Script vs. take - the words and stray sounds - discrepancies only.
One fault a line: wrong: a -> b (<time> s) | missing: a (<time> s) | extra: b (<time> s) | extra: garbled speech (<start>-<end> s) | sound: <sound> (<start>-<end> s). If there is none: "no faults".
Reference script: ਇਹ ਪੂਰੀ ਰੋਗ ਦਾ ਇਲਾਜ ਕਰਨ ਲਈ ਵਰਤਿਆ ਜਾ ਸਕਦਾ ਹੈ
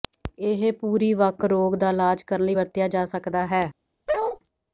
extra: ਵੱਖ (1.1 s)
sound: bark (4.1-4.4 s)